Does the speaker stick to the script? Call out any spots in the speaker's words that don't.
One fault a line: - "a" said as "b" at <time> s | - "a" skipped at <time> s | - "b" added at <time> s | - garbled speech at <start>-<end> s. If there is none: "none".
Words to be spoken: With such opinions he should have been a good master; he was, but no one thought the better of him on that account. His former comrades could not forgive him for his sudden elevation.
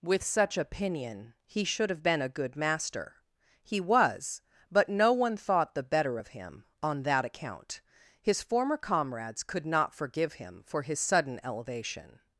- "opinions" said as "opinion" at 0.6 s